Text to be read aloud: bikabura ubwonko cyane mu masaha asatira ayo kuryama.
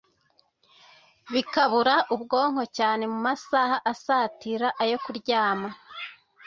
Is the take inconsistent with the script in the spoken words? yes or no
no